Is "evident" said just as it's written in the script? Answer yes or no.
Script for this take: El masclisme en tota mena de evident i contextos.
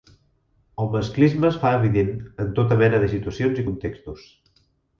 no